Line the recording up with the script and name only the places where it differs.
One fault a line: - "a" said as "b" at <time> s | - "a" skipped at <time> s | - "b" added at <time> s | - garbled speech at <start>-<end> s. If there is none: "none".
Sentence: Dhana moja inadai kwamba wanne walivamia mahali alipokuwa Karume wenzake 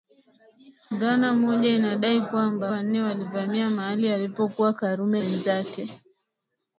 none